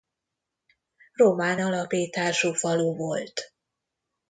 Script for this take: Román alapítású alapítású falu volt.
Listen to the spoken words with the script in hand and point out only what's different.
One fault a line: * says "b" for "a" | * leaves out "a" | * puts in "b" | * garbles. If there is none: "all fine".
* leaves out "alapítású"